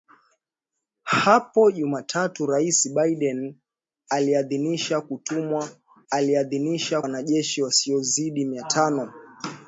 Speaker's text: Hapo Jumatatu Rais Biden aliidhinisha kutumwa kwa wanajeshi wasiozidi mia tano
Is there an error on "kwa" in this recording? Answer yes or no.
yes